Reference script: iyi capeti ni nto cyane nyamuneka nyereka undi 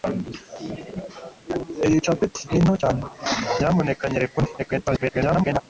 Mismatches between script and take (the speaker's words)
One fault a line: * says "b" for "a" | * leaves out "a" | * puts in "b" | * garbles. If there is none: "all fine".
* garbles